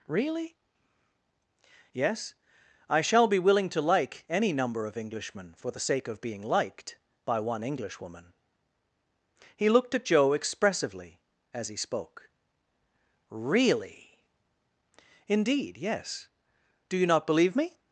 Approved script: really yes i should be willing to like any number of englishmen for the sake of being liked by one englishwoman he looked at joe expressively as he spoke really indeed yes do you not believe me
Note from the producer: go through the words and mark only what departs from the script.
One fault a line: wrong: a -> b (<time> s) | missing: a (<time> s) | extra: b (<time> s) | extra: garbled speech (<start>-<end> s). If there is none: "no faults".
wrong: should -> shall (3.0 s)